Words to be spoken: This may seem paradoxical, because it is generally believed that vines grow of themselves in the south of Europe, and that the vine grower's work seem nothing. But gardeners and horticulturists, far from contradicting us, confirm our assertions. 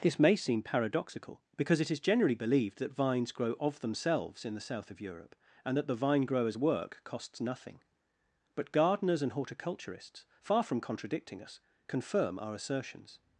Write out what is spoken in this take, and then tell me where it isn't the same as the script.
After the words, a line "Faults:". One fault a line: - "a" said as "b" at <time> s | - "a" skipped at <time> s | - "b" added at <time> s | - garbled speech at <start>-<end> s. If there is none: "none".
This may seem paradoxical, because it is generally believed that vines grow of themselves in the south of Europe, and that the vine grower's work costs nothing. But gardeners and horticulturists, far from contradicting us, confirm our assertions.
Faults:
- "seem" said as "costs" at 7.0 s